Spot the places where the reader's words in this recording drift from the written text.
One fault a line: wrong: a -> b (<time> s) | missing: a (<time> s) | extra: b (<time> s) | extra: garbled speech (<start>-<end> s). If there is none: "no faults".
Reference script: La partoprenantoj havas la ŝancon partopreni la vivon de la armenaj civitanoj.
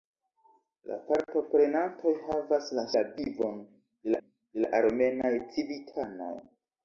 missing: ŝancon partopreni (2.9 s)
extra: de (4.2 s)